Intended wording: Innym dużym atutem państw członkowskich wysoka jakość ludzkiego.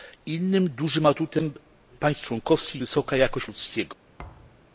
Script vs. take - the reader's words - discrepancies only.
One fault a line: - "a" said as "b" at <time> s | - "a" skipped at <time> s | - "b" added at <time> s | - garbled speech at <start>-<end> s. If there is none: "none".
none